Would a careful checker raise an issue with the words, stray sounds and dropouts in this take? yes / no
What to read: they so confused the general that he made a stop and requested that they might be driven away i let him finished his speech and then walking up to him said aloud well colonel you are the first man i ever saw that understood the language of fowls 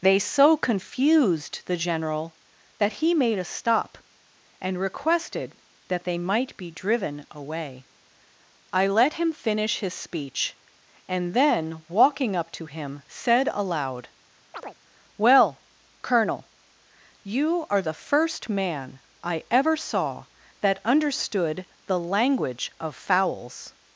yes